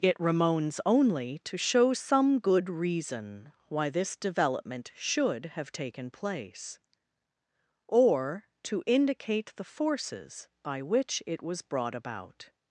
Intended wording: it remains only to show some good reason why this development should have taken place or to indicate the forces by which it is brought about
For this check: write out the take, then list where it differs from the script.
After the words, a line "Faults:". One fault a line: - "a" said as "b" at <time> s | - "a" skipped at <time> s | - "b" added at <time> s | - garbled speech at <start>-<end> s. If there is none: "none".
it remains only to show some good reason why this development should have taken place or to indicate the forces by which it was brought about
Faults:
- "is" said as "was" at 11.4 s